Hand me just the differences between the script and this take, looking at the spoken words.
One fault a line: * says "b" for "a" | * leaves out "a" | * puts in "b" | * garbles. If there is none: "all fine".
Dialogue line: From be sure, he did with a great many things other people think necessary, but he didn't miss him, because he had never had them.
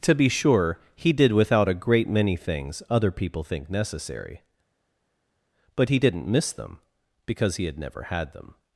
* says "To" for "From"
* says "without" for "with"
* says "them" for "him"